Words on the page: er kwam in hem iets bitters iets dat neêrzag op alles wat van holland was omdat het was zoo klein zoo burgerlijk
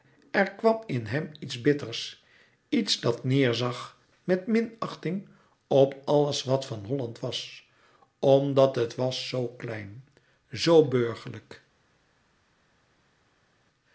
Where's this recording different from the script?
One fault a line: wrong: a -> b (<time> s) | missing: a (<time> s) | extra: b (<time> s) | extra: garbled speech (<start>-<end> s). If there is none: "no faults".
extra: met minachting (4.2 s)